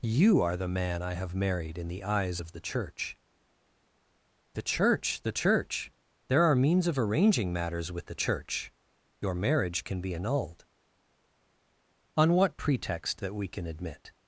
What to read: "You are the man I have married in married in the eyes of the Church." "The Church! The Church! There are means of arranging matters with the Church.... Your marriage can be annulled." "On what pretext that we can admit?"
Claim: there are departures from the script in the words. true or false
true